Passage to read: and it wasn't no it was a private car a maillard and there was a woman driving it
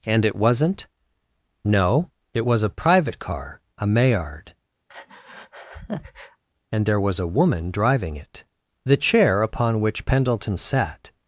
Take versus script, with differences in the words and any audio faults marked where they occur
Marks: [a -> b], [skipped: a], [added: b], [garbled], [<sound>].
and it wasn't no it was a private car a maillard [breath] and there was a woman driving it [added: the chair upon which pendleton sat]